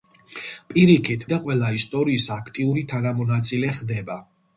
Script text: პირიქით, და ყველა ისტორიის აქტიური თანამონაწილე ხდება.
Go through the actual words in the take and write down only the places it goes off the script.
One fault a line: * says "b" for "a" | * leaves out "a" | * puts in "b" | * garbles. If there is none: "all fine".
all fine